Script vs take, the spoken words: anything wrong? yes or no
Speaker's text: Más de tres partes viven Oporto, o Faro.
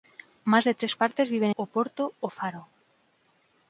no